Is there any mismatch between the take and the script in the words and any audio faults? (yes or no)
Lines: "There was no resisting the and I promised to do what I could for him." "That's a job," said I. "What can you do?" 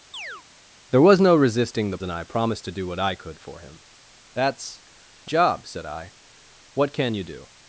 yes